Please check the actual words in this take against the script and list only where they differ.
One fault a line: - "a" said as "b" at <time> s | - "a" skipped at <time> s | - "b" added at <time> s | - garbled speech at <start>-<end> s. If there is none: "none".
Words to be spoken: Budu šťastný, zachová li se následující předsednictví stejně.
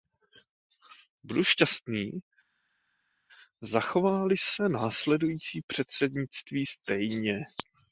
none